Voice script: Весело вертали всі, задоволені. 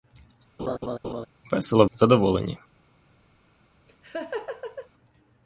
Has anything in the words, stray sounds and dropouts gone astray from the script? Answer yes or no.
yes